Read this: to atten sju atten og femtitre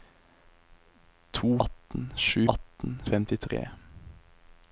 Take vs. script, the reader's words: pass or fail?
pass